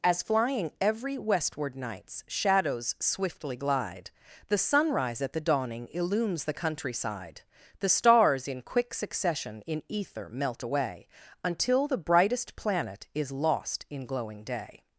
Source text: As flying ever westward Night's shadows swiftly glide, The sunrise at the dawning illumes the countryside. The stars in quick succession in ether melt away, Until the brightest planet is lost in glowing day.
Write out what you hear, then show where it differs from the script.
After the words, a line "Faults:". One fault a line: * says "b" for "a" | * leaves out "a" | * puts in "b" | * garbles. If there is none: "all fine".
As flying every westward Night's shadows swiftly glide, The sunrise at the dawning illumes the countryside. The stars in quick succession in ether melt away, Until the brightest planet is lost in glowing day.
Faults:
* says "every" for "ever"